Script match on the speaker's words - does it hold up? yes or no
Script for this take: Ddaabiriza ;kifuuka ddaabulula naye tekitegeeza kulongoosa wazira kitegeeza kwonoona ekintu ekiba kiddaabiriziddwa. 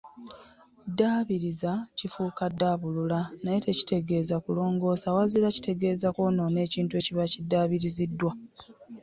yes